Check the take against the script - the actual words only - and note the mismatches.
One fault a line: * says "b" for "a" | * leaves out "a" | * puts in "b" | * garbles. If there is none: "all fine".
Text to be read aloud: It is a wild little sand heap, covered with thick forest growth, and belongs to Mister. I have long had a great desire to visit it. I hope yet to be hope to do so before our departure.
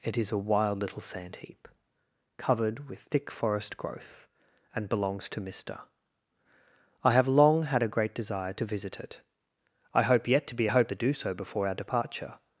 all fine